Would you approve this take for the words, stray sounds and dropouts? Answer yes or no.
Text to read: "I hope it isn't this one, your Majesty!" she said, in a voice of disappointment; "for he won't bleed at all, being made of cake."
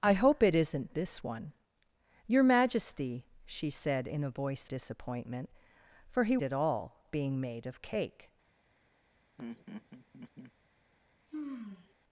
no